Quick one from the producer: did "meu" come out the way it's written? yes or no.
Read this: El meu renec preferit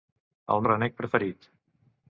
no